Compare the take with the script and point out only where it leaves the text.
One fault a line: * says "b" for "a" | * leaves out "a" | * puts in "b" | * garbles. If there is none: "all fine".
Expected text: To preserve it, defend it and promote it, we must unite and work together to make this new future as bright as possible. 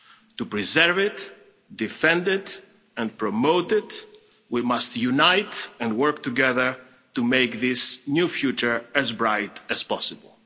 all fine